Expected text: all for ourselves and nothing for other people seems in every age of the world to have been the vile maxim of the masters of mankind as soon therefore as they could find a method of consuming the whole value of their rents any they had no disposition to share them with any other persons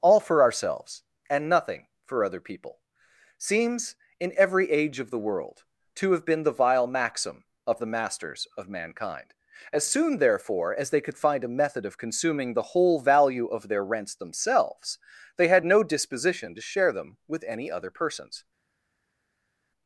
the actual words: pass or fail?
fail